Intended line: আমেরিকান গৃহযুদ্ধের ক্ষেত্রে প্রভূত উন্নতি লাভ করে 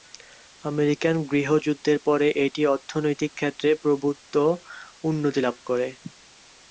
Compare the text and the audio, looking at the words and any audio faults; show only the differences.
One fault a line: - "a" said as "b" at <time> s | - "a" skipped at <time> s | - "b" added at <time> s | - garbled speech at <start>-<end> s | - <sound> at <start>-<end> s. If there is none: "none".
- "পরে এটি অর্থনৈতিক" added at 2.1 s